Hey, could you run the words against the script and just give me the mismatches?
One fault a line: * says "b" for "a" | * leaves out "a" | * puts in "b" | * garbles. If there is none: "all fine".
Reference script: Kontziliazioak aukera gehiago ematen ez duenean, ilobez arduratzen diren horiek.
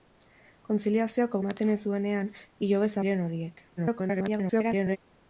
* leaves out "aukera gehiago"
* leaves out "arduratzen"
* garbles